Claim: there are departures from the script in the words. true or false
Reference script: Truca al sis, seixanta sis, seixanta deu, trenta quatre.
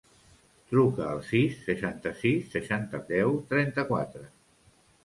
false